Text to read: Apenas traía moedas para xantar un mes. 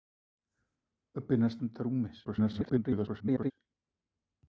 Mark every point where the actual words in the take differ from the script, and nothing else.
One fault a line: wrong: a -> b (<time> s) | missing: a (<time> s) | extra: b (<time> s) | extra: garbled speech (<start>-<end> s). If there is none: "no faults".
missing: traía moedas para (1.6 s)
extra: garbled speech (2.2-3.5 s)